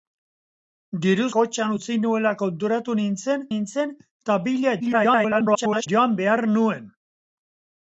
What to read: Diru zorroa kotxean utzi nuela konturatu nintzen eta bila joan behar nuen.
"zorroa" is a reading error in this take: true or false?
true